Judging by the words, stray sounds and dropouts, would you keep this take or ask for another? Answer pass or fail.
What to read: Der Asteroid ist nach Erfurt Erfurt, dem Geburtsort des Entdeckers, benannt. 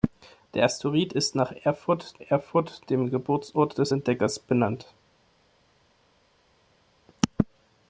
pass